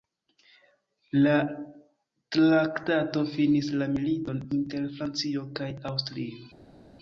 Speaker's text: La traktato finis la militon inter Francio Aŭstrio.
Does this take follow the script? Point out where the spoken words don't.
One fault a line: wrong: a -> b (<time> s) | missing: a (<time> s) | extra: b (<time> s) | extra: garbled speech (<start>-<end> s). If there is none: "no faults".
extra: kaj (5.6 s)